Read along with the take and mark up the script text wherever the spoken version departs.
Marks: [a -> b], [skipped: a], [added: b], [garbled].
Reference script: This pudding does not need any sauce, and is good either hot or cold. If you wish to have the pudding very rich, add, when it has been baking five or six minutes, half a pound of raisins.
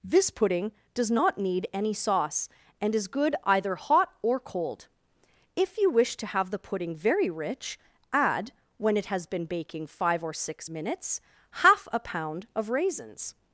This pudding does not need any sauce, and is good either hot or cold. If you wish to have the pudding very rich, add, when it has been baking five or six minutes, half a pound of raisins.